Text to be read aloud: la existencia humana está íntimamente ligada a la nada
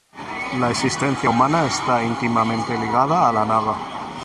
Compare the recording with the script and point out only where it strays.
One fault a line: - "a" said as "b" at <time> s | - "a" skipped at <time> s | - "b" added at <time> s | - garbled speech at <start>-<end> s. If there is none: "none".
none